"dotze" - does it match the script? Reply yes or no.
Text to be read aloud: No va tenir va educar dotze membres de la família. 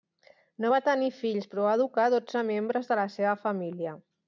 yes